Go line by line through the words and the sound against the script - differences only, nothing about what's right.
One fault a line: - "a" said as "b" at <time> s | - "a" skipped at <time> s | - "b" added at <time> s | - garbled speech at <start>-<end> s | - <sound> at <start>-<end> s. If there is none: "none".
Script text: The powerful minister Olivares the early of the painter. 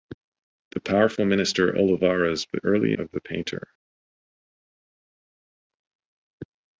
none